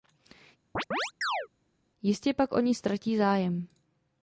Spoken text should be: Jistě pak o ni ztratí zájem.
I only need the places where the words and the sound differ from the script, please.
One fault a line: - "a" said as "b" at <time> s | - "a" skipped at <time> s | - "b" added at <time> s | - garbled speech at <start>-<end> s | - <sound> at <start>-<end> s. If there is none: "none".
- chirp at 0.7-1.5 s